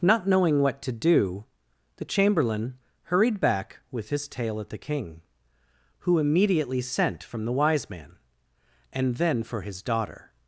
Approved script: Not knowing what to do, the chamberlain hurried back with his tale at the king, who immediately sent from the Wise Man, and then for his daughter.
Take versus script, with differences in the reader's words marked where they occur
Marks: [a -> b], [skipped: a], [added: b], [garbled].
Not knowing what to do, the chamberlain hurried back with his tale at the king, who immediately sent from the Wise Man, and then for his daughter.